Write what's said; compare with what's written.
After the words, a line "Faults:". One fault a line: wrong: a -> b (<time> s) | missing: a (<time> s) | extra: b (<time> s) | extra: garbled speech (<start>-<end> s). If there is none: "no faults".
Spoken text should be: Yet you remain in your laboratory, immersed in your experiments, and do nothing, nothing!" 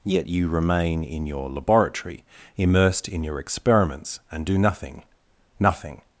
Yet you remain in your laboratory, immersed in your experiments, and do nothing, nothing!"
Faults:
no faults